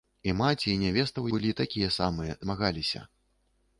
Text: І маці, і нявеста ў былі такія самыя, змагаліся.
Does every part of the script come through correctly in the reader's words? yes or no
yes